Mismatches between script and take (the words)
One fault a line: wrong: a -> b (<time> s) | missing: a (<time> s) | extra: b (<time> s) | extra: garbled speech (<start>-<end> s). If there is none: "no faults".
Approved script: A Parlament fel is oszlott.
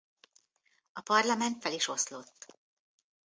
no faults